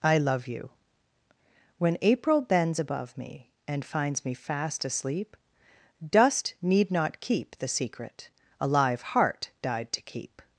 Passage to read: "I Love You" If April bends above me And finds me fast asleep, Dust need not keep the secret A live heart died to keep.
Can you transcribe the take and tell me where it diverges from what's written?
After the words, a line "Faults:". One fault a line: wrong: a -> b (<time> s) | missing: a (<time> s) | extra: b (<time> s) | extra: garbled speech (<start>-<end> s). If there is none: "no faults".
"I Love You" When April bends above me And finds me fast asleep, Dust need not keep the secret A live heart died to keep.
Faults:
wrong: If -> When (1.8 s)